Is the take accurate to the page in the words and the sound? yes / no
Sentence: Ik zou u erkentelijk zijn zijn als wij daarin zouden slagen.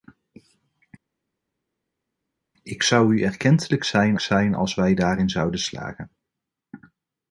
yes